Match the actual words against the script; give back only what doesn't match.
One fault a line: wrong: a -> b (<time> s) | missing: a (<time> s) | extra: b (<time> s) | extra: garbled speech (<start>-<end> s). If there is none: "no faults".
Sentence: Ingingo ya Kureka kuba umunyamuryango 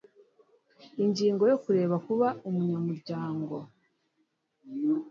no faults